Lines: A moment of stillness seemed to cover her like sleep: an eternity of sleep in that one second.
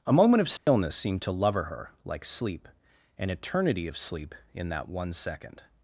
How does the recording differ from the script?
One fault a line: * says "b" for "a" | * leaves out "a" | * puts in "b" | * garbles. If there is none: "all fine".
* says "lover" for "cover"